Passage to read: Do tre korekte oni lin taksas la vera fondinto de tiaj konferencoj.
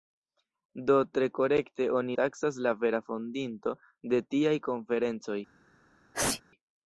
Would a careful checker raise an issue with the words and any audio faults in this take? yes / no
yes